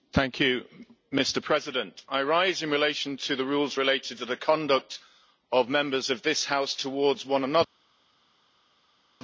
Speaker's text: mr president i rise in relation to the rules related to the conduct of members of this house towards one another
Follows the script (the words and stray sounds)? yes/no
yes